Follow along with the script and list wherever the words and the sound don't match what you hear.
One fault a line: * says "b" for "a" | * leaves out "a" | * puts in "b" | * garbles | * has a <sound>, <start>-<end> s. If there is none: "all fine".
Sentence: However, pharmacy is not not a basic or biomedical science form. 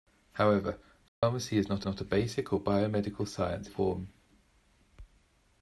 * has a dropout, 1.1-1.2 s